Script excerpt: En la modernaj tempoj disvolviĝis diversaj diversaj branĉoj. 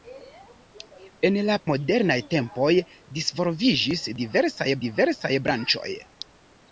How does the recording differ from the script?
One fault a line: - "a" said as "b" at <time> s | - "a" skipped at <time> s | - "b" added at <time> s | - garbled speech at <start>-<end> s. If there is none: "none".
none